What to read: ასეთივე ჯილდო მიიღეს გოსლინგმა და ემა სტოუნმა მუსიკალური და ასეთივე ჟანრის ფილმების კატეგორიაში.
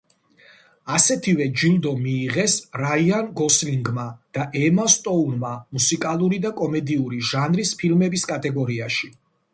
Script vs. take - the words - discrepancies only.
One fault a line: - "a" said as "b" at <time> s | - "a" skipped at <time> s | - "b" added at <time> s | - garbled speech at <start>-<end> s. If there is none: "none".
- "რაიან" added at 2.8 s
- "ასეთივე" said as "კომედიური" at 6.6 s